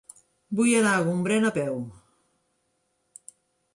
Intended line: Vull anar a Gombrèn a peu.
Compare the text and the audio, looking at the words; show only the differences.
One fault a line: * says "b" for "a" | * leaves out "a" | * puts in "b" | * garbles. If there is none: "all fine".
all fine